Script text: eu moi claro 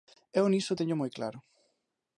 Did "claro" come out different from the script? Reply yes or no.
no